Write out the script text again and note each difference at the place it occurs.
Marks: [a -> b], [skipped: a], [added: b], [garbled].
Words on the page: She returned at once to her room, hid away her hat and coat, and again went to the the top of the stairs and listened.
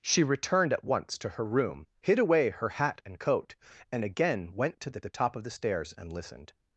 She returned at once to her room, hid away her hat and coat, and again went to the the top of the stairs and listened.